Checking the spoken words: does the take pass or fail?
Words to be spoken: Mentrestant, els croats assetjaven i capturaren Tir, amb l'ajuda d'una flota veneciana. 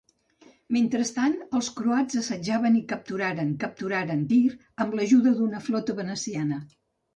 fail